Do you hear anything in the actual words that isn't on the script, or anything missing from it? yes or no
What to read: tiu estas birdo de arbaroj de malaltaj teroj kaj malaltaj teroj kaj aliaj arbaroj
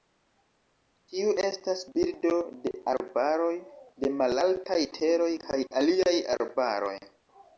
yes